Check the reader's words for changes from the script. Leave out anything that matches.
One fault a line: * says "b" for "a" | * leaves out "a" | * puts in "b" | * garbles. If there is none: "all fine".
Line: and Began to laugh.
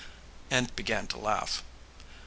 all fine